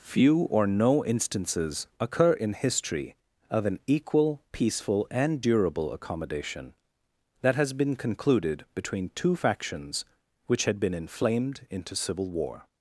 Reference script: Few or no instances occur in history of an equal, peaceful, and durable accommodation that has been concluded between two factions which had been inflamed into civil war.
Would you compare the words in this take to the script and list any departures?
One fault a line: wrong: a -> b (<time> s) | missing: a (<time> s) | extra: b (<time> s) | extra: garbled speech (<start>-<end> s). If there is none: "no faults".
no faults